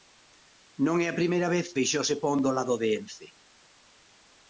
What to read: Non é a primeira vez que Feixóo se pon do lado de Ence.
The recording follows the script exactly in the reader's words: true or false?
false